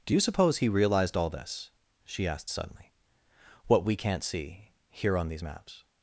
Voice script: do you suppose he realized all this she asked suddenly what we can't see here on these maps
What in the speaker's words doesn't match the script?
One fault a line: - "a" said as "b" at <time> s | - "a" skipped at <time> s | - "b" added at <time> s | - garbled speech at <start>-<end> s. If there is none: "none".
none